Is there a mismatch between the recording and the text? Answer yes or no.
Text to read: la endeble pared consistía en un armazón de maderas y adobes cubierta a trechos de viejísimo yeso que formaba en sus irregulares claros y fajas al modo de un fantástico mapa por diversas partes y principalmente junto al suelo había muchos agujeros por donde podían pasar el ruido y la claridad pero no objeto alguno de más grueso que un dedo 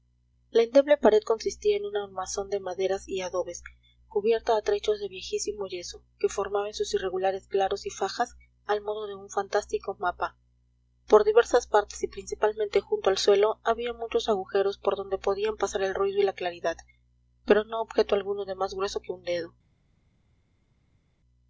no